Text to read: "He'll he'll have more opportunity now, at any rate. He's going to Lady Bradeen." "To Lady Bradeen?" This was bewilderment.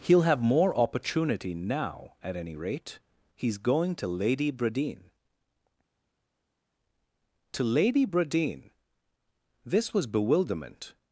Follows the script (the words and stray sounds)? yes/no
no